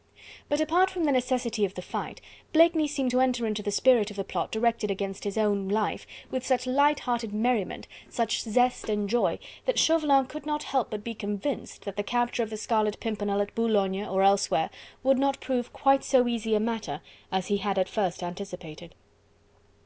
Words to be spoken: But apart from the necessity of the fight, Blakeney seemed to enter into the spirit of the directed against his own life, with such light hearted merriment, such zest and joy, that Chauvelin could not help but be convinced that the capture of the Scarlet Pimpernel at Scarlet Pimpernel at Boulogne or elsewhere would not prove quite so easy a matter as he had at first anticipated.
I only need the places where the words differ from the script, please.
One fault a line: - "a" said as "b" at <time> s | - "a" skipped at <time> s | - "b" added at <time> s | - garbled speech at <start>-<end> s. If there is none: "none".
- "plot" added at 4.2 s
- "Scarlet Pimpernel at" skipped at 13.5 s